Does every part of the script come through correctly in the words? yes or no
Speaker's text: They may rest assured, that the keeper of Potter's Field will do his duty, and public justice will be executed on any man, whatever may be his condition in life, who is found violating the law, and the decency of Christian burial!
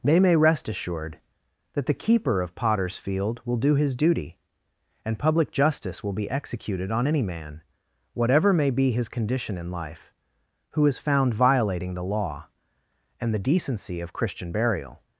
yes